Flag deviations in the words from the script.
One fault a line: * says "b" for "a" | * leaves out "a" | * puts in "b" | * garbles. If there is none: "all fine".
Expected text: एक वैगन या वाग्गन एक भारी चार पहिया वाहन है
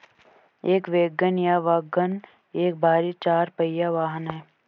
all fine